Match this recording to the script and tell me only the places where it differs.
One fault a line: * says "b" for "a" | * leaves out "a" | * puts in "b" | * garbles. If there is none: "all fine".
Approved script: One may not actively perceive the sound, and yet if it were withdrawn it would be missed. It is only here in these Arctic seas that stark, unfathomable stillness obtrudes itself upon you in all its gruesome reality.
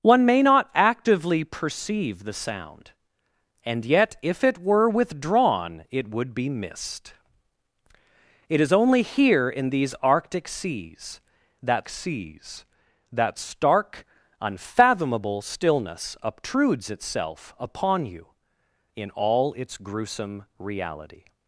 * puts in "seas that"